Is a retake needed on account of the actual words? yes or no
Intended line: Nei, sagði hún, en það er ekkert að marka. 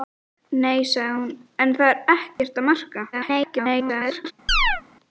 yes